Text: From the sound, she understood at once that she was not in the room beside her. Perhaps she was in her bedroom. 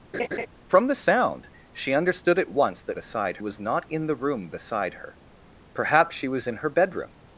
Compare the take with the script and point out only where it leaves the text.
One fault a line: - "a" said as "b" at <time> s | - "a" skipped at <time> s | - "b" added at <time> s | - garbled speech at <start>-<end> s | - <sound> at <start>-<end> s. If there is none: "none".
- laugh at 0.1-0.5 s
- "she" said as "beside" at 2.9 s